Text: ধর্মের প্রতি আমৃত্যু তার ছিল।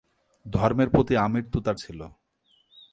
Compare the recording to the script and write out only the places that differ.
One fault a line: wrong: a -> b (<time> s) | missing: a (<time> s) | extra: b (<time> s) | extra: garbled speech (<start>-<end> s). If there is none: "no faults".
no faults